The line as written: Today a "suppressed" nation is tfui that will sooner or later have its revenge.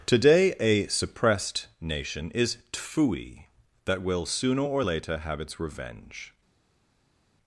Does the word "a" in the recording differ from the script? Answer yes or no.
no